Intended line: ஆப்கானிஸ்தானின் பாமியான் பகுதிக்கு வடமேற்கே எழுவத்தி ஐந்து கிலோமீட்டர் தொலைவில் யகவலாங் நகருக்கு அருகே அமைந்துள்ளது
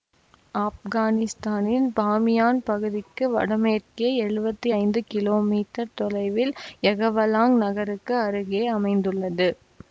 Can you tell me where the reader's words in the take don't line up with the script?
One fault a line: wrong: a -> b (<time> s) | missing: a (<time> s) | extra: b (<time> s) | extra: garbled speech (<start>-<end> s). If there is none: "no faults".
no faults